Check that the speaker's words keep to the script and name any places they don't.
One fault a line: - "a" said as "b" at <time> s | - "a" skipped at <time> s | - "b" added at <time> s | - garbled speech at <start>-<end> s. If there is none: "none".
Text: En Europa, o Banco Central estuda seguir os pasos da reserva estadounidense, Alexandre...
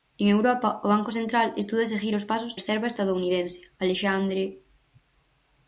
- "da" skipped at 2.5 s